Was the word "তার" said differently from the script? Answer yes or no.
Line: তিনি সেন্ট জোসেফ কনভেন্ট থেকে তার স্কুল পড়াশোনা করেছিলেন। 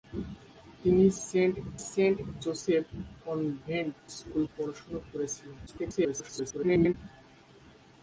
yes